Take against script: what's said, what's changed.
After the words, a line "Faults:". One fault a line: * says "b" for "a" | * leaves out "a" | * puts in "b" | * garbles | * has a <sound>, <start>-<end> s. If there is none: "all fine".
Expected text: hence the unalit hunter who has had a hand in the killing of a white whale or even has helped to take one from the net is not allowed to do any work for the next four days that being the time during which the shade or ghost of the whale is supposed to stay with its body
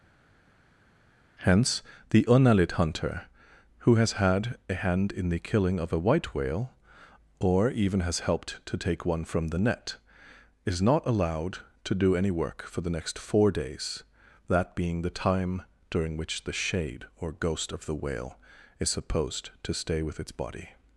hence the unalit hunter who has had a hand in the killing of a white whale or even has helped to take one from the net is not allowed to do any work for the next four days that being the time during which the shade or ghost of the whale is supposed to stay with its body
Faults:
all fine